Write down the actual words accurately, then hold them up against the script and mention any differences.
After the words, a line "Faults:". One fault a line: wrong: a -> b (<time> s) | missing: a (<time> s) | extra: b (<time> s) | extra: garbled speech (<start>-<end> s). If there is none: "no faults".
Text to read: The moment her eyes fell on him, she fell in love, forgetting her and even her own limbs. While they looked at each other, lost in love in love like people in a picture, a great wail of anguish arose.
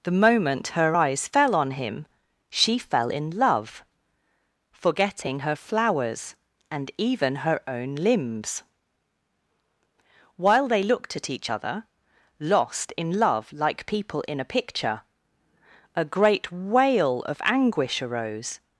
The moment her eyes fell on him, she fell in love, forgetting her flowers and even her own limbs. While they looked at each other, lost in love like people in a picture, a great wail of anguish arose.
Faults:
extra: flowers (5.6 s)
missing: in love (13.5 s)